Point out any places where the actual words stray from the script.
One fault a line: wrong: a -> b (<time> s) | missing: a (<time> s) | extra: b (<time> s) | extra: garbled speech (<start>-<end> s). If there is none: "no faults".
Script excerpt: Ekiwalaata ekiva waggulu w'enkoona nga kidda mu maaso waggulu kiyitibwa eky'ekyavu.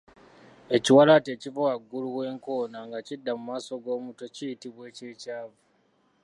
wrong: waggulu -> g'omutwe (3.8 s)